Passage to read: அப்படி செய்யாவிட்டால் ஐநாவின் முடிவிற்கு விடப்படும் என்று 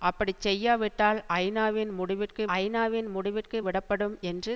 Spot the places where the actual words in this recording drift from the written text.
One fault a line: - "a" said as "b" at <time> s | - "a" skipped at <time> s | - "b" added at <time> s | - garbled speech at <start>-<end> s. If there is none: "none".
- "ஐநாவின் முடிவிற்கு" added at 2.6 s